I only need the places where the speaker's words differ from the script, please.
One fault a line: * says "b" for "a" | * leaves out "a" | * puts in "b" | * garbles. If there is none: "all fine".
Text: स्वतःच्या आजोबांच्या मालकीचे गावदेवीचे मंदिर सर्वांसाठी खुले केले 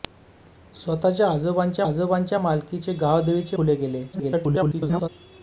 * puts in "आजोबांच्या"
* leaves out "मंदिर सर्वांसाठी"
* garbles